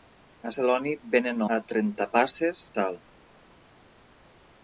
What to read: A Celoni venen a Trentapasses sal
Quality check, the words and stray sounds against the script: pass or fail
pass